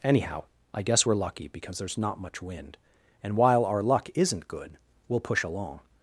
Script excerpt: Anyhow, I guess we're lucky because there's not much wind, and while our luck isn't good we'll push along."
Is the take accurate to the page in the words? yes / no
yes